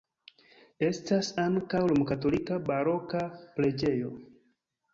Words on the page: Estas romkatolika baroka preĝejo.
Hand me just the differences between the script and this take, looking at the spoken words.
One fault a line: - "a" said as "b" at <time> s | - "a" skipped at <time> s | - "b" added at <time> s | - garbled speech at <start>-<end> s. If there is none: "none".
- "ankaŭ" added at 1.4 s